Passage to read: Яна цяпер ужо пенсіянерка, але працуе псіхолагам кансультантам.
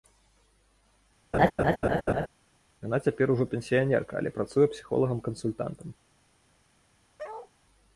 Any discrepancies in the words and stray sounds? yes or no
yes